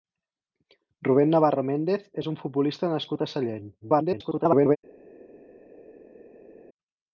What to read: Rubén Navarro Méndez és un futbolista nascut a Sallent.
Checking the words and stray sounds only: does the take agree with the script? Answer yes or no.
no